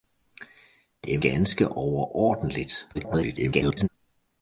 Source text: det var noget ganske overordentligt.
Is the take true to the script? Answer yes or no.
no